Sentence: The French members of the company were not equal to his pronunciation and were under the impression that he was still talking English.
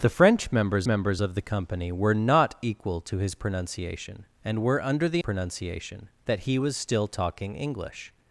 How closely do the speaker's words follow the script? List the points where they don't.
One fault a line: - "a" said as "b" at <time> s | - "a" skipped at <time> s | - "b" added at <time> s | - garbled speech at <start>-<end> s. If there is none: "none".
- "members" added at 0.8 s
- "impression" said as "pronunciation" at 5.2 s